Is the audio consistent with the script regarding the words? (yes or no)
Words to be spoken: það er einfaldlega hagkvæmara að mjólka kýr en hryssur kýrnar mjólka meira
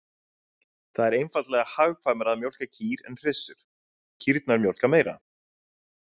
yes